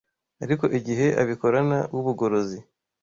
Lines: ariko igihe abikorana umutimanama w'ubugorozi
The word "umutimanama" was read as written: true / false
false